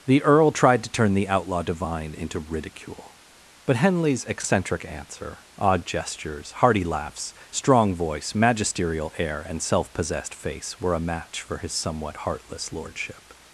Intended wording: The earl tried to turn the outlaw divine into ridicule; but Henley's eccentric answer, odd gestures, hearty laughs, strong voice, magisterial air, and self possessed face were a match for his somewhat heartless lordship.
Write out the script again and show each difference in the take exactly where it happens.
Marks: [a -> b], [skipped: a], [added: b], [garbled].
The earl tried to turn the outlaw divine into ridicule; but Henley's eccentric answer, odd gestures, hearty laughs, strong voice, magisterial air, and self possessed face were a match for his somewhat heartless lordship.